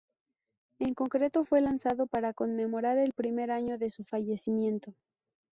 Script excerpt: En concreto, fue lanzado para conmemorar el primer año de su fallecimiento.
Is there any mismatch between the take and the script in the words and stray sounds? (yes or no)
no